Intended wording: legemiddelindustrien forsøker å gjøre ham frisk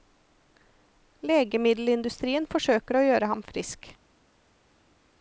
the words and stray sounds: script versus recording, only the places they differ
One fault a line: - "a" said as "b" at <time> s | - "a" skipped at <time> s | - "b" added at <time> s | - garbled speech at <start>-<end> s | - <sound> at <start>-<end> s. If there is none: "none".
none